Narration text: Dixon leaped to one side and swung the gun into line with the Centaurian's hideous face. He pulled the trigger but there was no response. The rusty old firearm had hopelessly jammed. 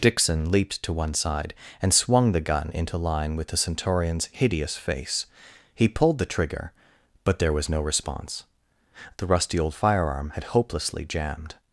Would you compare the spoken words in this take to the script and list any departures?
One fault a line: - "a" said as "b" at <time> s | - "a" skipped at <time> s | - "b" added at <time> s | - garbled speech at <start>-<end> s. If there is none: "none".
none